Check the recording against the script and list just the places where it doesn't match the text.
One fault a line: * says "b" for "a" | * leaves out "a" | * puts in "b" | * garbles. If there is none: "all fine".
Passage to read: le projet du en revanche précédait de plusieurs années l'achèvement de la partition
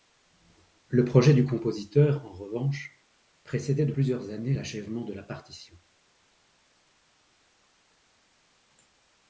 * puts in "compositeur"